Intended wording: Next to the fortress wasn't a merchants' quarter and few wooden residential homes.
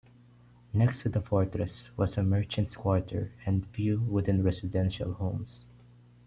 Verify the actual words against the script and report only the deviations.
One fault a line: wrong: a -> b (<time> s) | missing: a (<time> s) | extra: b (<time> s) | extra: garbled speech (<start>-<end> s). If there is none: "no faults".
wrong: wasn't -> was (2.0 s)